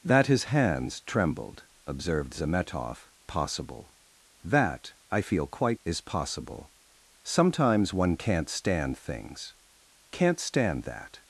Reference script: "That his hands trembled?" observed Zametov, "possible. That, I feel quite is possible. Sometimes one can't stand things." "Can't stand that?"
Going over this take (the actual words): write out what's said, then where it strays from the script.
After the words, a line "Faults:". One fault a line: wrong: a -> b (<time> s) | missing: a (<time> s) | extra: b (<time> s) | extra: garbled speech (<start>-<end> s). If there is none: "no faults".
"That his hands trembled?" observed Zametov, "possible. That, I feel quite is possible. Sometimes one can't stand things." "Can't stand that?"
Faults:
no faults